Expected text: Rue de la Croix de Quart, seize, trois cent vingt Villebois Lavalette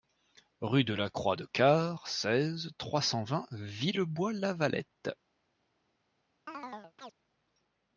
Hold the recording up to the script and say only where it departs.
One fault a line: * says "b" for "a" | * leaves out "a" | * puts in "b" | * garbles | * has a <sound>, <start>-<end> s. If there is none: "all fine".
* has a chirp, 6.5-7.1 s